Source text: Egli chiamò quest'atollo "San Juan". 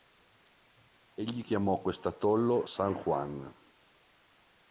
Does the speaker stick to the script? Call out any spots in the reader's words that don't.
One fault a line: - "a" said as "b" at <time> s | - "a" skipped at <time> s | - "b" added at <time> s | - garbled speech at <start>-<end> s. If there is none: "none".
none